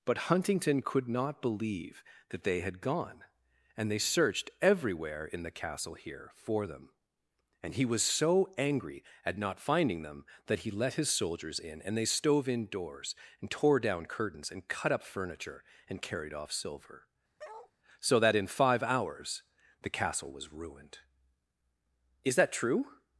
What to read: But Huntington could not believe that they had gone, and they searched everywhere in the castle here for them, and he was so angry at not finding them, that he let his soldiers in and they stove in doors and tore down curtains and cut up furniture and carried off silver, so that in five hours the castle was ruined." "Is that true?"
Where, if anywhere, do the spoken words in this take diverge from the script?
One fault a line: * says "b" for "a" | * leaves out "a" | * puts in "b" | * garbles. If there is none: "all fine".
all fine